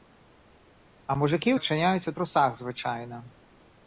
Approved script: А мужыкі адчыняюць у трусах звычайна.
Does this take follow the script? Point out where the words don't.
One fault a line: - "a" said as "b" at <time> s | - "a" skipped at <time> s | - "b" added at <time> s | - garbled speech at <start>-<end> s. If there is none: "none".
none